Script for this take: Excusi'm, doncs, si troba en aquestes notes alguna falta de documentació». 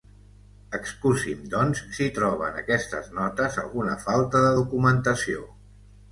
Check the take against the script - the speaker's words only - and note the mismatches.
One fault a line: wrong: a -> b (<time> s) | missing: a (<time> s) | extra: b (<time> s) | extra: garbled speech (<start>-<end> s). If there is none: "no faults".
no faults